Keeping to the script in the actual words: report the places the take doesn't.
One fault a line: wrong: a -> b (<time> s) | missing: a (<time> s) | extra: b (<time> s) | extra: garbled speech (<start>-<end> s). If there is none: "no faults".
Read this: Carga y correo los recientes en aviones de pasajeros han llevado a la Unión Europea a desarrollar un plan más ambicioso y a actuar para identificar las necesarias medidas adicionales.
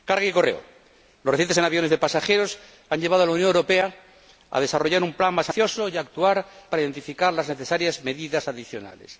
no faults